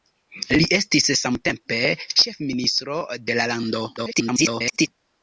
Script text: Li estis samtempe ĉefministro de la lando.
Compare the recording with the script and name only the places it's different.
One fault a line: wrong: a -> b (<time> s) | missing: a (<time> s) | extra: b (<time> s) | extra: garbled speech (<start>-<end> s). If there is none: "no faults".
extra: garbled speech (4.0-4.9 s)